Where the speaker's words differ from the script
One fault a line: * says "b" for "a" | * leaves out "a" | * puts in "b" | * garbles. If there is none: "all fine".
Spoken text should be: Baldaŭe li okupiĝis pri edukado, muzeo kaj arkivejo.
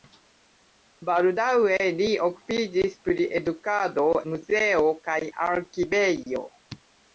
all fine